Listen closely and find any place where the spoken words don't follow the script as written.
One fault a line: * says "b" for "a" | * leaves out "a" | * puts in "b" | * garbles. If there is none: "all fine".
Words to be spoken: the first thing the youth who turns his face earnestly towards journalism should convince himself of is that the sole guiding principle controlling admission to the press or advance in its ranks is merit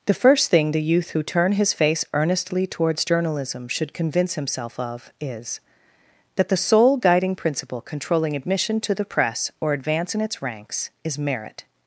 * says "turn" for "turns"